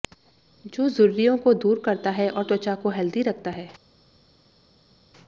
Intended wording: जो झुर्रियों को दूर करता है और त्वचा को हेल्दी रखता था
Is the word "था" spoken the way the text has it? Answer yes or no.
no